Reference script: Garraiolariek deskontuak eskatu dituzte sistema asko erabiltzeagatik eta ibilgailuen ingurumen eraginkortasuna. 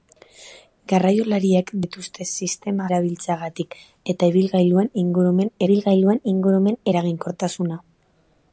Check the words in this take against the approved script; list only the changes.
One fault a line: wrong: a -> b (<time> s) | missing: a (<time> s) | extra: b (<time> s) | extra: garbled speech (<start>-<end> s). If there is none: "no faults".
missing: deskontuak eskatu (1.7 s)
missing: asko (2.9 s)
extra: ibilgailuen ingurumen (5.7 s)